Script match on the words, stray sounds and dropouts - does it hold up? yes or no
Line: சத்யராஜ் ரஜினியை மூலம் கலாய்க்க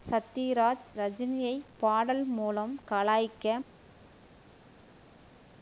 no